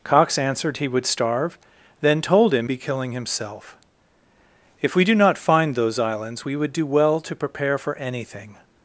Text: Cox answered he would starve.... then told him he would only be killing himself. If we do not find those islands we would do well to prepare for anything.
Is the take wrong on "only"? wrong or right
wrong